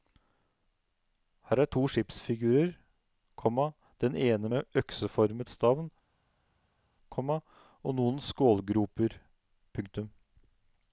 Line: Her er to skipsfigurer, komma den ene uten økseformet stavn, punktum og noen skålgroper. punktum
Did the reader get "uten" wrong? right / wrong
wrong